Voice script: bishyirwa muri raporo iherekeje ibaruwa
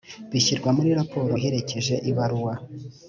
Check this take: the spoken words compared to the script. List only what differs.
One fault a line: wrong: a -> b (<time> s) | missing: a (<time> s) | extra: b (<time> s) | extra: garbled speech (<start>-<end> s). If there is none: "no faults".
no faults